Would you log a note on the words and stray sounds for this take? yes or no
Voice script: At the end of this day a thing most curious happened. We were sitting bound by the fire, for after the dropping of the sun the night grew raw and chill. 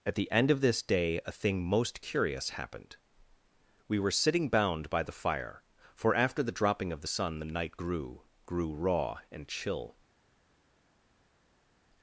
yes